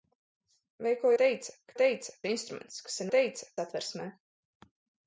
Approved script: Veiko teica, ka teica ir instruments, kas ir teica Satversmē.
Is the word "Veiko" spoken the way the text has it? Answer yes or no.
yes